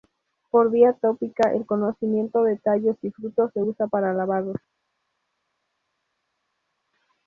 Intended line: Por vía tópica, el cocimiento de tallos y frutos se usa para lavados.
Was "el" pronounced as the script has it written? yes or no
yes